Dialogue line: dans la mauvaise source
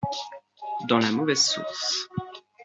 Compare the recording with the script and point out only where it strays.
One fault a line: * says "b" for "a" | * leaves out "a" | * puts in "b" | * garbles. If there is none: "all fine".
all fine